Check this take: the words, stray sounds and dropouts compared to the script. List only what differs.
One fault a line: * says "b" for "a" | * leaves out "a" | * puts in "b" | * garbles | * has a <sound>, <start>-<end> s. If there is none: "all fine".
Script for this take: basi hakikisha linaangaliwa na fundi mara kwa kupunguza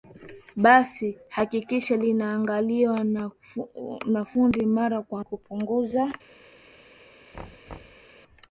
* has a thud, 7.3-8.1 s